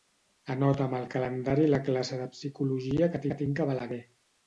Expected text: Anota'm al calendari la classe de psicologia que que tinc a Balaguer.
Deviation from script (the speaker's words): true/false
false